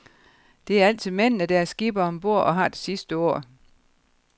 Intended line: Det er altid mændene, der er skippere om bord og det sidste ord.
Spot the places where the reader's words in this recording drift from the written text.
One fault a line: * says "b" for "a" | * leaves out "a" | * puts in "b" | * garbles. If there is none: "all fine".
* puts in "har"